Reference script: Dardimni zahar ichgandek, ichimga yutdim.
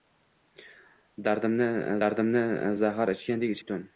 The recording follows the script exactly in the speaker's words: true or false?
false